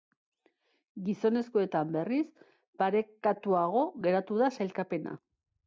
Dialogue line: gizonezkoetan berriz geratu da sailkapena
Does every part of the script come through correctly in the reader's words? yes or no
no